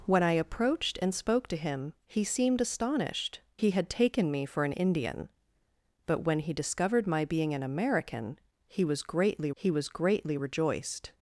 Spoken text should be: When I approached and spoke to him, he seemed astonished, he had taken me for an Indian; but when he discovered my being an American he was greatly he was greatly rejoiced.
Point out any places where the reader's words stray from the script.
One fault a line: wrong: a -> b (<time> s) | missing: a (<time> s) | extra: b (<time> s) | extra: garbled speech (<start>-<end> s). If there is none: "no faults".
no faults